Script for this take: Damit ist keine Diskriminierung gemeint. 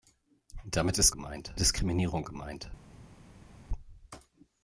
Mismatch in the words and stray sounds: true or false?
true